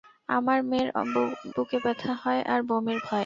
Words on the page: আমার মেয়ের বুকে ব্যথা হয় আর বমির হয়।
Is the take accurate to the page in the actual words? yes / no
yes